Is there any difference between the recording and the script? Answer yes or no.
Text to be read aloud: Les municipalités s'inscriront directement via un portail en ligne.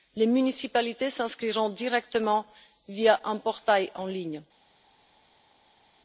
no